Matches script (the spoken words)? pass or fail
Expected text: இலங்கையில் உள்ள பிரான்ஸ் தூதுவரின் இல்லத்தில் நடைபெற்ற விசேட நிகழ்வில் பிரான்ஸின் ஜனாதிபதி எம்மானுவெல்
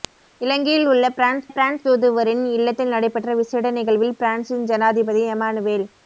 fail